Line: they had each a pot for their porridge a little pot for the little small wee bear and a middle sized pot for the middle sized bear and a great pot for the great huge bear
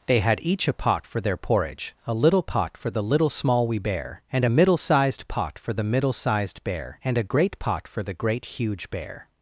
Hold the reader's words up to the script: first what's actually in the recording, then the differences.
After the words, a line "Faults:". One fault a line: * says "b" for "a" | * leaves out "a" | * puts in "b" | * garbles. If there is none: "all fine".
they had each a pot for their porridge a little pot for the little small wee bear and a middle sized pot for the middle sized bear and a great pot for the great huge bear
Faults:
all fine